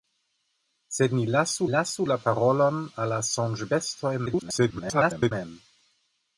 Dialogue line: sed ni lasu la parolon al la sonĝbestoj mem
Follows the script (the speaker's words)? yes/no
no